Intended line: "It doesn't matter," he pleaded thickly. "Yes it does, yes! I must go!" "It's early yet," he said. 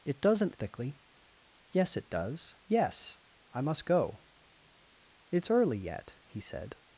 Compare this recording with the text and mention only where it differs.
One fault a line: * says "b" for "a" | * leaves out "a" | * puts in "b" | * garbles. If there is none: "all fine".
* leaves out "matter he pleaded"